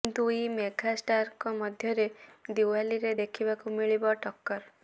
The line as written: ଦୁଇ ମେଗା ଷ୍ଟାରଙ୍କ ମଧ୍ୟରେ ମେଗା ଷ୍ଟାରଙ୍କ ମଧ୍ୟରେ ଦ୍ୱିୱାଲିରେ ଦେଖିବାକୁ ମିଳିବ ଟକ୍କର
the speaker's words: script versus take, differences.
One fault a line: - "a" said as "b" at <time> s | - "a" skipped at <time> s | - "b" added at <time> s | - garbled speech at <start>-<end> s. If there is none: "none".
- "ମେଗା ଷ୍ଟାରଙ୍କ ମଧ୍ୟରେ" skipped at 2.1 s